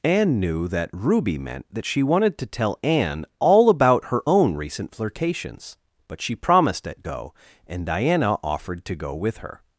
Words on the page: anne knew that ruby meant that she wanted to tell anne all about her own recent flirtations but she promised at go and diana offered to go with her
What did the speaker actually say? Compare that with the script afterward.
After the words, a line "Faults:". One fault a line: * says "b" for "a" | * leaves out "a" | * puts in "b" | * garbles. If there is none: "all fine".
anne knew that ruby meant that she wanted to tell anne all about her own recent flirtations but she promised at go and diana offered to go with her
Faults:
all fine